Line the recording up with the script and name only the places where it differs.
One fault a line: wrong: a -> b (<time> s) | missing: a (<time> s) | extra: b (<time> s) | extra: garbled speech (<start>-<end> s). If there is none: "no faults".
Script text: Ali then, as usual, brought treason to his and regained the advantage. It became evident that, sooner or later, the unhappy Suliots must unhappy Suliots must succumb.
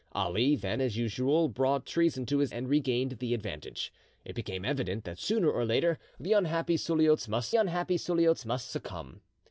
no faults